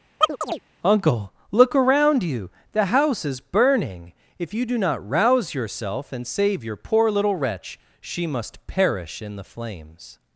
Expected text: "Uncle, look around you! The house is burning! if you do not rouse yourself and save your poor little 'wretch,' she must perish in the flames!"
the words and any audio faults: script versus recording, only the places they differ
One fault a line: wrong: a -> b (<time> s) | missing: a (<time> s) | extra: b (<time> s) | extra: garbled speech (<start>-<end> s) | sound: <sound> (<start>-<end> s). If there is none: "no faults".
sound: chirp (0.2-0.6 s)